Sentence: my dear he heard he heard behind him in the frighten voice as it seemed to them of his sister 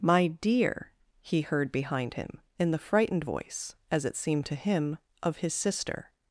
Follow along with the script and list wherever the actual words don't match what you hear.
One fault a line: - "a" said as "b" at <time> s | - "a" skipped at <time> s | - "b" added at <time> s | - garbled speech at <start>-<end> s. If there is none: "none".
- "he heard" skipped at 1.7 s
- "frighten" said as "frightened" at 2.8 s
- "them" said as "him" at 4.6 s